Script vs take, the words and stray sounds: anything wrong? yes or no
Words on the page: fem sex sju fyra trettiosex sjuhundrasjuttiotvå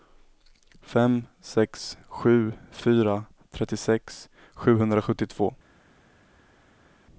no